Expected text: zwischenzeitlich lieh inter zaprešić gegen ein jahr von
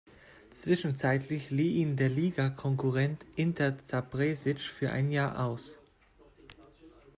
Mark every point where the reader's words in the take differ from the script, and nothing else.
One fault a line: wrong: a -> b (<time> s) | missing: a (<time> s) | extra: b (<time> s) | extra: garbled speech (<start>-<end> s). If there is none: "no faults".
extra: ihn der ligakonkurrent (1.8 s)
wrong: gegen -> für (4.6 s)
wrong: von -> aus (5.5 s)